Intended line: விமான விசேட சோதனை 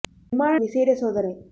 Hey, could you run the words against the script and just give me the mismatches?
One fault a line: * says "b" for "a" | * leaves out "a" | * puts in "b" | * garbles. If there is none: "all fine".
all fine